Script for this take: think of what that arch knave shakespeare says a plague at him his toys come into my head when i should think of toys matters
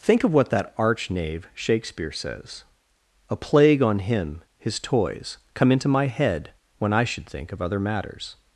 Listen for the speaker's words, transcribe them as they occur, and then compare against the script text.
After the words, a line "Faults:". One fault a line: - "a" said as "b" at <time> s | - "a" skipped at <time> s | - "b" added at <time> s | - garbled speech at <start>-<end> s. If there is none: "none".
think of what that arch knave shakespeare says a plague on him his toys come into my head when i should think of other matters
Faults:
- "at" said as "on" at 3.8 s
- "toys" said as "other" at 7.6 s